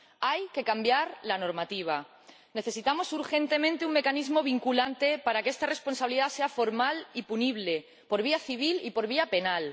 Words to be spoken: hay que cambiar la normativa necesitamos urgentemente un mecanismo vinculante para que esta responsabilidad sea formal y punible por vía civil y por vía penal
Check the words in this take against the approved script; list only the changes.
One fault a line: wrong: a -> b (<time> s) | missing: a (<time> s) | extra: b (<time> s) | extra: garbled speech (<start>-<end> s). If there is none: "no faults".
no faults